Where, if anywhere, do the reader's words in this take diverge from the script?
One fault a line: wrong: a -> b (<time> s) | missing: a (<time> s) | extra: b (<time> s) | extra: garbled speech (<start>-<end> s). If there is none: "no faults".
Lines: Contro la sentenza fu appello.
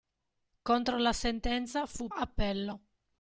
no faults